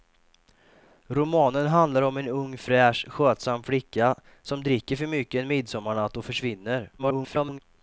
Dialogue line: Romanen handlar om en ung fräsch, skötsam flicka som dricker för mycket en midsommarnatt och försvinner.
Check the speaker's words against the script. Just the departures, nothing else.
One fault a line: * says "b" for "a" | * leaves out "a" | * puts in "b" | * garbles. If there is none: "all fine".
* garbles